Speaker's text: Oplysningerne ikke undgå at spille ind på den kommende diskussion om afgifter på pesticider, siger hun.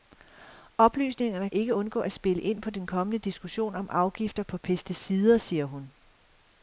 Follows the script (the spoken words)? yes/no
yes